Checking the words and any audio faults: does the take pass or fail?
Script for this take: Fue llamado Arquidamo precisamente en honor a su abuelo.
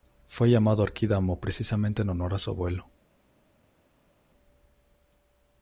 pass